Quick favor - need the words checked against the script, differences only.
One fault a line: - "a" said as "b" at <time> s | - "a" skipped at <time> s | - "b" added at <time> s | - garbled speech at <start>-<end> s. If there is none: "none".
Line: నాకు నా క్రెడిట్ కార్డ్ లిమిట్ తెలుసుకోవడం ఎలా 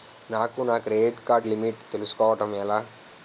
none